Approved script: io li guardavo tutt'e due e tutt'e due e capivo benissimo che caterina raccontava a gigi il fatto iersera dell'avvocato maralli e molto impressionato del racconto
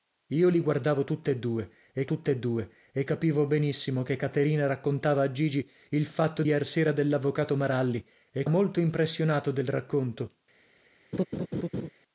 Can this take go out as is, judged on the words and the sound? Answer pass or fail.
fail